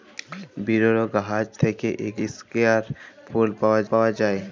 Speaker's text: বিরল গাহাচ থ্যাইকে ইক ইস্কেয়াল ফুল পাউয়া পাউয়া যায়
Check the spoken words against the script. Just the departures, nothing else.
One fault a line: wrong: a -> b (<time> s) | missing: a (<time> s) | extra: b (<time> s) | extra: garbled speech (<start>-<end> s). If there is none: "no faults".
no faults